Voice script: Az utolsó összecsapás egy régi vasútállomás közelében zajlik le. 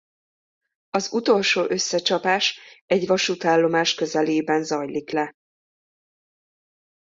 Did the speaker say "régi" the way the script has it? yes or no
no